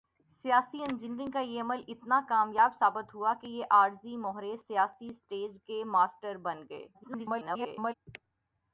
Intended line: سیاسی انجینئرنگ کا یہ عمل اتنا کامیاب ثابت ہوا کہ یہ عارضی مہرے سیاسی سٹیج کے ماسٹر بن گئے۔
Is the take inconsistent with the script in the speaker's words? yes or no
yes